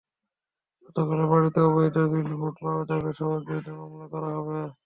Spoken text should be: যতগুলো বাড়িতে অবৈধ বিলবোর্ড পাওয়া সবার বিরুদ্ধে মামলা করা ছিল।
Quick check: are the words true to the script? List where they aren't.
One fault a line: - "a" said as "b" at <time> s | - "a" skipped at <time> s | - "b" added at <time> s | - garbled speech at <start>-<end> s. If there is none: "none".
- "যাবে" added at 2.9 s
- "ছিল" said as "হবে" at 4.4 s